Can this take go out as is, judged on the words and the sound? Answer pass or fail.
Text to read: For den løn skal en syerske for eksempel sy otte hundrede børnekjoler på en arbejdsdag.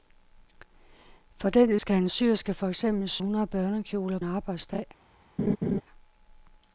fail